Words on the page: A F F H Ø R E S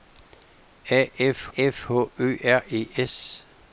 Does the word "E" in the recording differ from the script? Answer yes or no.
no